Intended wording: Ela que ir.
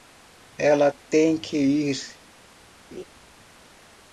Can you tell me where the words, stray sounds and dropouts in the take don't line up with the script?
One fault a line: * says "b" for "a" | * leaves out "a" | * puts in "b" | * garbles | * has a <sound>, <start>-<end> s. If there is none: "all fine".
* puts in "tem"
* has a laugh, 2.9-3.0 s